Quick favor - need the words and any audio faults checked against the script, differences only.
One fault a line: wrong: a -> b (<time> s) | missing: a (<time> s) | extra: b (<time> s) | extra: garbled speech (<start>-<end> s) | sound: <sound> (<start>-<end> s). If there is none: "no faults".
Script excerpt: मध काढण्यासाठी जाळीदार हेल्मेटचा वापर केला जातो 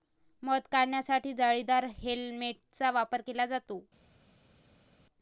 no faults